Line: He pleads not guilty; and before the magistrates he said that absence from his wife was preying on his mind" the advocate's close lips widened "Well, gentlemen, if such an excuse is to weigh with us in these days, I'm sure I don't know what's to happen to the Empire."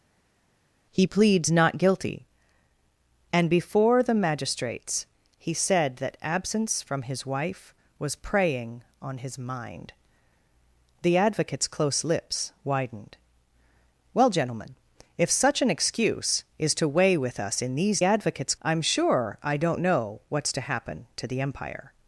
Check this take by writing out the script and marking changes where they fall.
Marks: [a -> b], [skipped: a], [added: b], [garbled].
He pleads not guilty; and before the magistrates he said that absence from his wife was preying on his mind" the advocate's close lips widened "Well, gentlemen, if such an excuse is to weigh with us in these [days, -> advocate's] I'm sure I don't know what's to happen to the Empire."